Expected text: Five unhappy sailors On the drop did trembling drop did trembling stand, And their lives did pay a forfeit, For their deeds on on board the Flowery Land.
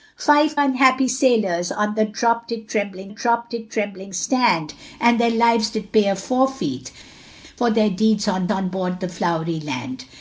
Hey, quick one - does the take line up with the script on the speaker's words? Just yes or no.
yes